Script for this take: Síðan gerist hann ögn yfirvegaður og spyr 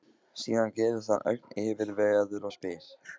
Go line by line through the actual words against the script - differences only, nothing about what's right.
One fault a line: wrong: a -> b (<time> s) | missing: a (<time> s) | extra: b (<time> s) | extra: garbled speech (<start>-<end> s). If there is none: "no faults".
no faults